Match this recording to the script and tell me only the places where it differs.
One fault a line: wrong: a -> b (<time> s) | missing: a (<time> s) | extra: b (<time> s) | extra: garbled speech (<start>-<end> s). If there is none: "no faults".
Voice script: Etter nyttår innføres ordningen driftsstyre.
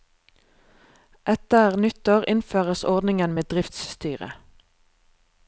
extra: med (3.3 s)